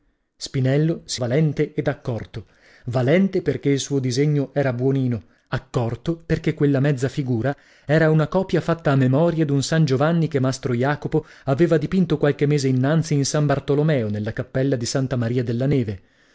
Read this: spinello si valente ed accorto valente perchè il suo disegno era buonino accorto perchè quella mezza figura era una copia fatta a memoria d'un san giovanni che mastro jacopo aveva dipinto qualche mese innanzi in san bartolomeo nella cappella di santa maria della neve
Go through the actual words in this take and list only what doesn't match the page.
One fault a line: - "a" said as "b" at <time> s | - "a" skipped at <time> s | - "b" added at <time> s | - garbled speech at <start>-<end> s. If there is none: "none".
none